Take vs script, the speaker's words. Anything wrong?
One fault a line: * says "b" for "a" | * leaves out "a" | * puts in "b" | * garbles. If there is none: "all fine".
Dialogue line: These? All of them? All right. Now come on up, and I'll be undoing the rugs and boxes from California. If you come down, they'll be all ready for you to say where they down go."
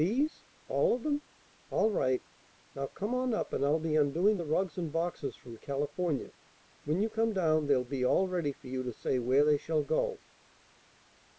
* says "When" for "If"
* says "shall" for "down"